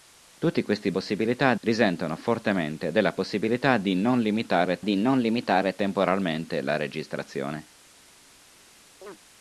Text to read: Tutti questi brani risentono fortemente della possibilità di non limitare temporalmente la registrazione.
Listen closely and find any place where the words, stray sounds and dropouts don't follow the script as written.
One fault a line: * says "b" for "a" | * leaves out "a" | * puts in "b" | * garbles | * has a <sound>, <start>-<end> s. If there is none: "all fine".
* says "possibilità" for "brani"
* puts in "di non limitare"
* has a chirp, 9.0-9.2 s